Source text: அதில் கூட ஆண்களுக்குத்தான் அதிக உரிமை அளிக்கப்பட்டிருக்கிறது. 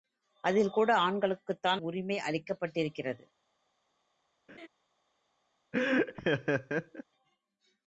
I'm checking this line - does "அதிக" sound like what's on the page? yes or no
no